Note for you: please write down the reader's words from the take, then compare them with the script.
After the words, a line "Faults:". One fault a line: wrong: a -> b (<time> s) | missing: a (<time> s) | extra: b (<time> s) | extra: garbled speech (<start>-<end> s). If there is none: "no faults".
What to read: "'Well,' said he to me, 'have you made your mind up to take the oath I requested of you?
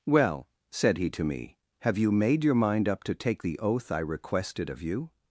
"'Well,' said he to me, 'have you made your mind up to take the oath I requested of you?
Faults:
no faults